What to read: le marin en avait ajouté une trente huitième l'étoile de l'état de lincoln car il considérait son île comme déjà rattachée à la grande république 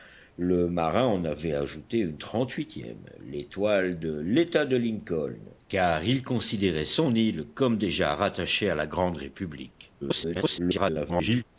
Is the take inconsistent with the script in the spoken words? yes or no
yes